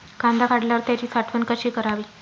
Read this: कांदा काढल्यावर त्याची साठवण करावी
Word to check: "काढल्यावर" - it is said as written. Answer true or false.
true